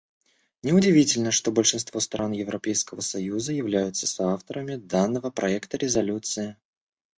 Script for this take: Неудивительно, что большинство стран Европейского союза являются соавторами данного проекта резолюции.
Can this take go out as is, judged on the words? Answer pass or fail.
pass